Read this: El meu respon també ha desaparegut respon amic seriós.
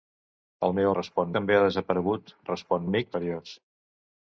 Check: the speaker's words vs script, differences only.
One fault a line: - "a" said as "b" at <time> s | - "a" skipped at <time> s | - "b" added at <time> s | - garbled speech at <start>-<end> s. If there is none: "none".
none